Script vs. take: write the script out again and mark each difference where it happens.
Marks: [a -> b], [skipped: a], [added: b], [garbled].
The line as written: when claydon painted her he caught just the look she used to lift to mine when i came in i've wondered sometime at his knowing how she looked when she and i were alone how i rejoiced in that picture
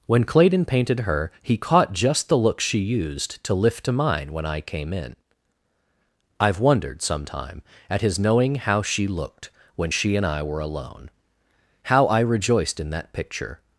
when claydon painted her he caught just the look she used to lift to mine when i came in i've wondered sometime at his knowing how she looked when she and i were alone how i rejoiced in that picture